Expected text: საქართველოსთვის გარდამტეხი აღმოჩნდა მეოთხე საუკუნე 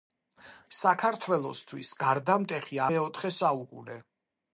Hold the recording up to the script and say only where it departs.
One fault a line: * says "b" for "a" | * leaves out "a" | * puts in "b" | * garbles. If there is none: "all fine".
* leaves out "აღმოჩნდა"